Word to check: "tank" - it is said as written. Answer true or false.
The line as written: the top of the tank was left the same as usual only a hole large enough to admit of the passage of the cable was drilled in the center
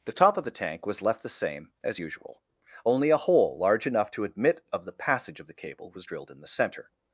true